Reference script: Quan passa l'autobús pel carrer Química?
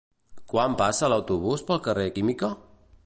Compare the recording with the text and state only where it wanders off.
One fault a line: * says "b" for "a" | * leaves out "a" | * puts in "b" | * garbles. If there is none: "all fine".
all fine